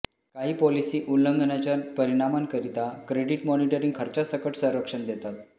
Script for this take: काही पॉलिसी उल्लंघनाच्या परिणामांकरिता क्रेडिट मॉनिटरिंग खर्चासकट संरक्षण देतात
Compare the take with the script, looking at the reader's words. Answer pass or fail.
pass